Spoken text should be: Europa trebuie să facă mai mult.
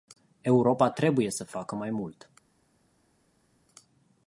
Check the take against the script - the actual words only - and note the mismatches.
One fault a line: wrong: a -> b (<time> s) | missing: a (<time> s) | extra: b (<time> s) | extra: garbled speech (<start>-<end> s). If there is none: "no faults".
no faults